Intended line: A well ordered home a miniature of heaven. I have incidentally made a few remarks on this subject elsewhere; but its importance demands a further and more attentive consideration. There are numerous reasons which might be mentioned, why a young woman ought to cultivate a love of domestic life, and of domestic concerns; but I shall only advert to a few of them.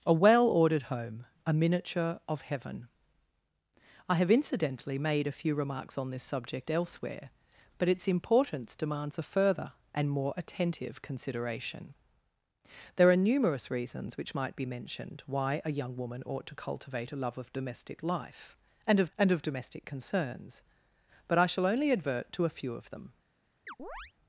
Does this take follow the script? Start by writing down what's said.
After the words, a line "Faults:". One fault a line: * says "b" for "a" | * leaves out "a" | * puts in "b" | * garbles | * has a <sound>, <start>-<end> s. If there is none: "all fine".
A well ordered home a miniature of heaven. I have incidentally made a few remarks on this subject elsewhere; but its importance demands a further and more attentive consideration. There are numerous reasons which might be mentioned, why a young woman ought to cultivate a love of domestic life, and of and of domestic concerns; but I shall only advert to a few of them.
Faults:
* puts in "and of"
* has a chirp, 23.7-24.1 s